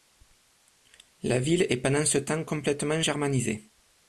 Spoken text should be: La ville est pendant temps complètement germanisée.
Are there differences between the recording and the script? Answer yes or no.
yes